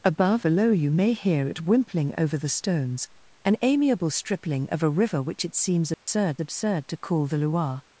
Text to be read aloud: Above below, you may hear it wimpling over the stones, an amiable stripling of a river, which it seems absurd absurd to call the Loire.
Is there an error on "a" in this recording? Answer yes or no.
no